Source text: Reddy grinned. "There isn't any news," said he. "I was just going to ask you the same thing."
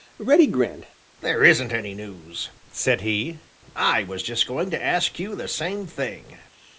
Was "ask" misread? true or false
false